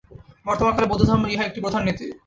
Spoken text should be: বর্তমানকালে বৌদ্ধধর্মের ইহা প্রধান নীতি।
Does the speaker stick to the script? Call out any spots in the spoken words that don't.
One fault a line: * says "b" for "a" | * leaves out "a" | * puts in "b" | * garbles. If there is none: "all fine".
* puts in "একটি"